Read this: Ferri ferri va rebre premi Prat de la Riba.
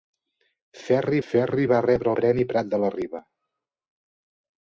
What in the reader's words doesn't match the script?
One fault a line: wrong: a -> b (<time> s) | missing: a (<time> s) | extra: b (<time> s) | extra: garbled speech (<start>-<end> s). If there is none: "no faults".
no faults